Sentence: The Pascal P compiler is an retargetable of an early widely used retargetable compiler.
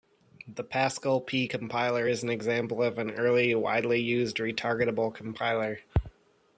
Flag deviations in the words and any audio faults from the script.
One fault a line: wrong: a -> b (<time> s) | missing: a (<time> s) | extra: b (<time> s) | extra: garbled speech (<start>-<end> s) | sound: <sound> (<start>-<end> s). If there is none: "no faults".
wrong: retargetable -> example (2.3 s)